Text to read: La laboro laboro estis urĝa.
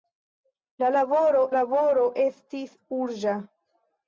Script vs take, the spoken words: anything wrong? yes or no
no